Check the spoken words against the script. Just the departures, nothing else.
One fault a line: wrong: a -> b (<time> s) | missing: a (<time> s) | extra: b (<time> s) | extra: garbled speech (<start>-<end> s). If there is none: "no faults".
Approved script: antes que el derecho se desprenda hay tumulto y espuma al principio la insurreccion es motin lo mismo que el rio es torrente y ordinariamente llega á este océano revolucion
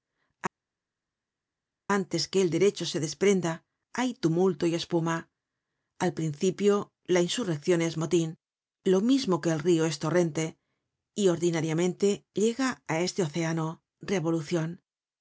no faults